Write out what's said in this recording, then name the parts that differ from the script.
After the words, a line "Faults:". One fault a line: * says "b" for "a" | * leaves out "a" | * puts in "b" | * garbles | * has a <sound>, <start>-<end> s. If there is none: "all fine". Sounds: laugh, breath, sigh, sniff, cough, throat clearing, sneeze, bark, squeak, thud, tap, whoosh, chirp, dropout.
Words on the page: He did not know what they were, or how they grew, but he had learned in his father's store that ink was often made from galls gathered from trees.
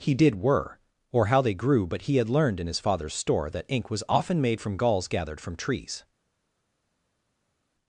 He did were, or how they grew, but he had learned in his father's store that ink was often made from galls gathered from trees.
Faults:
* leaves out "not know what they"